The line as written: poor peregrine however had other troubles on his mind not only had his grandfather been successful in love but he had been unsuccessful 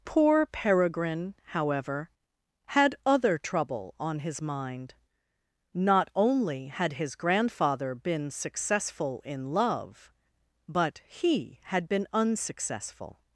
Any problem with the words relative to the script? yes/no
yes